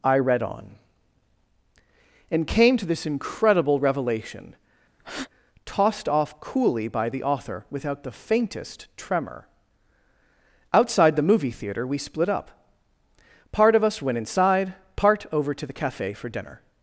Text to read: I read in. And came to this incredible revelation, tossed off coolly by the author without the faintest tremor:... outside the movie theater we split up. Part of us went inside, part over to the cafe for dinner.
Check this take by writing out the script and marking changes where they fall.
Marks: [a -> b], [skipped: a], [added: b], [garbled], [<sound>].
I read [in. -> on] And came to this incredible revelation, [breath] tossed off coolly by the author without the faintest tremor:... outside the movie theater we split up. Part of us went inside, part over to the cafe for dinner.